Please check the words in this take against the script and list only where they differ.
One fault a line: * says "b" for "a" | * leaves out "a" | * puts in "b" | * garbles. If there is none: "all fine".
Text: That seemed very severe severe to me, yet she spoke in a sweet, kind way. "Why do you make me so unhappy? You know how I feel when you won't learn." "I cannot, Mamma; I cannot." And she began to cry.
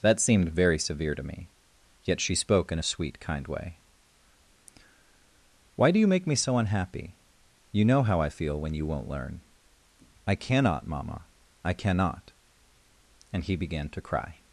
* leaves out "severe"
* says "he" for "she"